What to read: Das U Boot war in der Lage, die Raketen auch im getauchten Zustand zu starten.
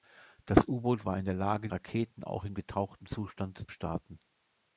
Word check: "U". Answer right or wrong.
right